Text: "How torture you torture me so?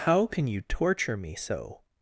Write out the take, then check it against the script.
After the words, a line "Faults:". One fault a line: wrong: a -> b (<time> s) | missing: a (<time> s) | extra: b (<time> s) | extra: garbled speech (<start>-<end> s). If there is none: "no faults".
"How can you torture me so?
Faults:
wrong: torture -> can (0.2 s)